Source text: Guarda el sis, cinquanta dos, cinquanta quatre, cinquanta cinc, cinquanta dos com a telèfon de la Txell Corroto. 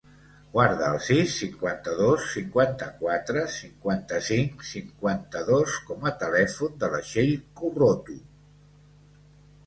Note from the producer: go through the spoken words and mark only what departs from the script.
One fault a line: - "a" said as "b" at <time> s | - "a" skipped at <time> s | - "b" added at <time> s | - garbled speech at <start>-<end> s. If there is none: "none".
none